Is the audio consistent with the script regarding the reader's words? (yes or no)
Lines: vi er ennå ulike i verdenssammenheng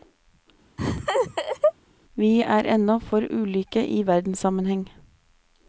no